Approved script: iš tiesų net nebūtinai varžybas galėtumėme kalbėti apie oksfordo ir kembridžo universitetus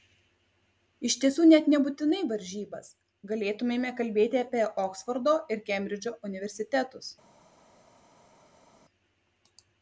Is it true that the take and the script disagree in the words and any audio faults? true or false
false